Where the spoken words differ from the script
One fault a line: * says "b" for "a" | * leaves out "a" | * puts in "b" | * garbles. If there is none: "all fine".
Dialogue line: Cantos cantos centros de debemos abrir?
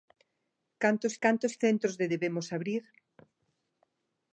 all fine